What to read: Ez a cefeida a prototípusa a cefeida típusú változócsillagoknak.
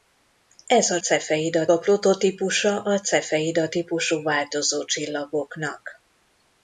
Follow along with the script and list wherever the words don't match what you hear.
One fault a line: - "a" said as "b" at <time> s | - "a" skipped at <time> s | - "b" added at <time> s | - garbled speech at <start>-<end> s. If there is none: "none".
none